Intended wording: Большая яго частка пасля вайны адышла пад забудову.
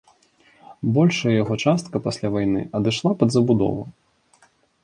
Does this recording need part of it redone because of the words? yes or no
no